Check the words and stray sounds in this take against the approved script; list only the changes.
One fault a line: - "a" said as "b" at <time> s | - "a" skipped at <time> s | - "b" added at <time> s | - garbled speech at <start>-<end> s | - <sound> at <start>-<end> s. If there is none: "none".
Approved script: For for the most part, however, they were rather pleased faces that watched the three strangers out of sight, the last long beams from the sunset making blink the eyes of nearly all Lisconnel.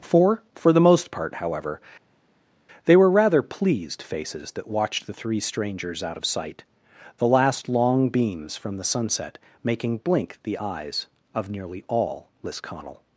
none